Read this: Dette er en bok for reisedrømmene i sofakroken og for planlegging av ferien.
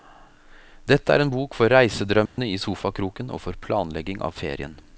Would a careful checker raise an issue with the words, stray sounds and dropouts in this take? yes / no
yes